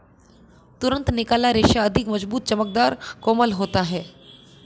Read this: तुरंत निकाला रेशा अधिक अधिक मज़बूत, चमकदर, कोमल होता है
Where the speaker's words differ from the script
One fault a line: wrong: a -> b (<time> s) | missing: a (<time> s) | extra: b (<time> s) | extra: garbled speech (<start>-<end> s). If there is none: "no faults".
missing: अधिक (2.1 s)